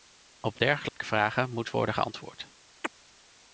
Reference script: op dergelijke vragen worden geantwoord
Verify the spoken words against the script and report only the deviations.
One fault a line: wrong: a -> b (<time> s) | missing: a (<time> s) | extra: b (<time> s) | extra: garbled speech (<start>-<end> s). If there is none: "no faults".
extra: moet (1.5 s)